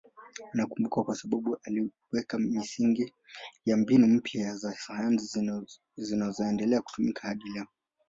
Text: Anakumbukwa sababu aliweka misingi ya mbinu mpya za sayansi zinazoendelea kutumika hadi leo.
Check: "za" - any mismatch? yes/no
no